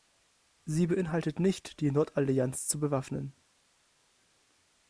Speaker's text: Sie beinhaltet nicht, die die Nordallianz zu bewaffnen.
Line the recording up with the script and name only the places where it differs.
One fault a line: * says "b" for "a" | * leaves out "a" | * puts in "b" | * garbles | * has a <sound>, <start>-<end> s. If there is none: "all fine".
* leaves out "die"